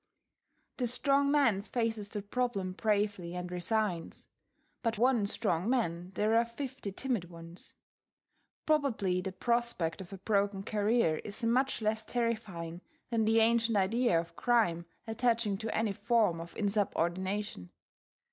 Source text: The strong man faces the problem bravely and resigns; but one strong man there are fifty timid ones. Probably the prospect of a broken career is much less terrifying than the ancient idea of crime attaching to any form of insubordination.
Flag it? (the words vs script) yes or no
no